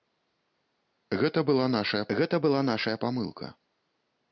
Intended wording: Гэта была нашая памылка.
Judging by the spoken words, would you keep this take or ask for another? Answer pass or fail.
fail